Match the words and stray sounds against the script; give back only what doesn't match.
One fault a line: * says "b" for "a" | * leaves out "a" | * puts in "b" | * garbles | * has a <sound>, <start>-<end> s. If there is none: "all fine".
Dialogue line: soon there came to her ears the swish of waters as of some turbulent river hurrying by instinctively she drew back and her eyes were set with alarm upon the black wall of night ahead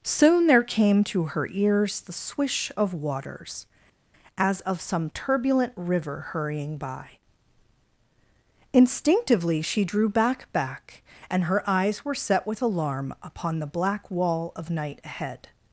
* puts in "back"